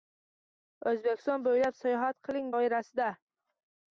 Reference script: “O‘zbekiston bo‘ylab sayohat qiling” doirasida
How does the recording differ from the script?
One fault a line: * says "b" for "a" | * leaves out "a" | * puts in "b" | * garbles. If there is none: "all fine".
all fine